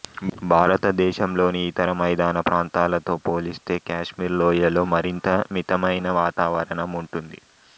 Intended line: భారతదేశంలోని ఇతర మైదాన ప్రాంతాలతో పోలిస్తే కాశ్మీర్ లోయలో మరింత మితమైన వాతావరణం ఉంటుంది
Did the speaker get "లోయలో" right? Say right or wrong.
right